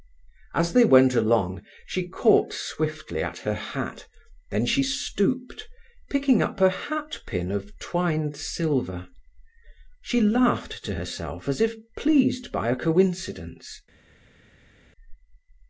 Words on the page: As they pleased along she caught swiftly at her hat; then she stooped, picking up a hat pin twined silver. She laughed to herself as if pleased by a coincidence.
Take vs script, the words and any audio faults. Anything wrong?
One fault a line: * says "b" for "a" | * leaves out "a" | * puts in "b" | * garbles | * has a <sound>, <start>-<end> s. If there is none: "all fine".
* says "went" for "pleased"
* puts in "of"